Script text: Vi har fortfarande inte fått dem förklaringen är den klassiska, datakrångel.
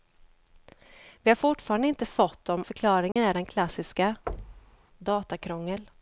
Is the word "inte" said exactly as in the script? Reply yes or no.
yes